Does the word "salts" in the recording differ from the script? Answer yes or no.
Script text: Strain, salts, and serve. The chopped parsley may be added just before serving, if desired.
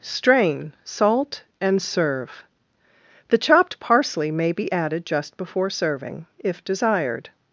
yes